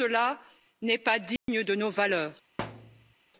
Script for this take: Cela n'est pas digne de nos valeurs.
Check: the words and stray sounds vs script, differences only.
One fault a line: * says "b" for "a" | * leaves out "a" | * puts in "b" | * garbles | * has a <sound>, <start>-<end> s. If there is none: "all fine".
* has a dropout, 1.4-1.5 s
* has a thud, 2.6-3.1 s